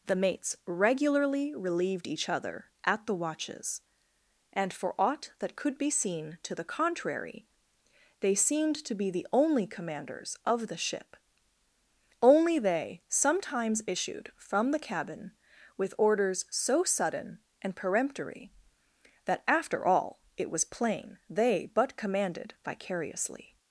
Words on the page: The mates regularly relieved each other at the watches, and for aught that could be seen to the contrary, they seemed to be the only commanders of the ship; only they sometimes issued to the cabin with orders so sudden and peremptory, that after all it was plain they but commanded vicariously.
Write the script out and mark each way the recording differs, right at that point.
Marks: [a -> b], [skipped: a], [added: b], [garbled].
The mates regularly relieved each other at the watches, and for aught that could be seen to the contrary, they seemed to be the only commanders of the ship; only they sometimes issued [to -> from] the cabin with orders so sudden and peremptory, that after all it was plain they but commanded vicariously.